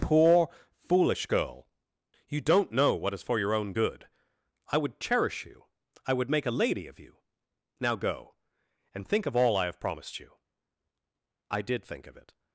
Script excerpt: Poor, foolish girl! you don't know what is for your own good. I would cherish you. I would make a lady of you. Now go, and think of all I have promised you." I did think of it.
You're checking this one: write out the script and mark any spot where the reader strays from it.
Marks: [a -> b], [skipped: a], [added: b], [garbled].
Poor, foolish girl! you don't know what is for your own good. I would cherish you. I would make a lady of you. Now go, and think of all I have promised you." I did think of it.